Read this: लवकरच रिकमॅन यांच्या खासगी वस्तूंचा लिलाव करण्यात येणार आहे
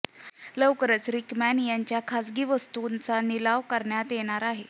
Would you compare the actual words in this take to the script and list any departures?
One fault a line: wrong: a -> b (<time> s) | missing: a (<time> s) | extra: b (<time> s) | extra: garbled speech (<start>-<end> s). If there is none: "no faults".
no faults